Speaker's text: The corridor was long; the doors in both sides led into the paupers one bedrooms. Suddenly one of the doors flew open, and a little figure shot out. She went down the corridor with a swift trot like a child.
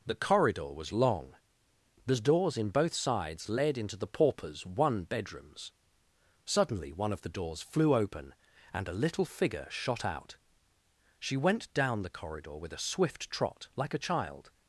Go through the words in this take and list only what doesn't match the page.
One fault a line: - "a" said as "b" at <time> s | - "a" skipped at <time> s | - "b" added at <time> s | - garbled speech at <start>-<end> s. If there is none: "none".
none